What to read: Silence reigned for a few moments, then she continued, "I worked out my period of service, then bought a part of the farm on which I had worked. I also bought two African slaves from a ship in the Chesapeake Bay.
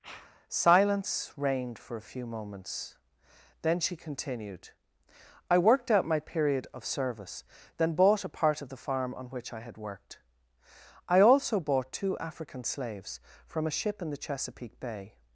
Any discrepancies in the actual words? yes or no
no